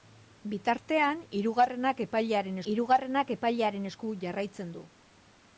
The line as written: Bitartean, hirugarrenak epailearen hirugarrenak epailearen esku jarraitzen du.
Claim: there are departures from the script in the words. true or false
false